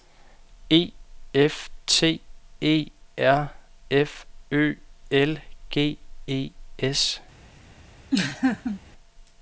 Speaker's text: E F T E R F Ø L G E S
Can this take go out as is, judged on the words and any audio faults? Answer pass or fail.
fail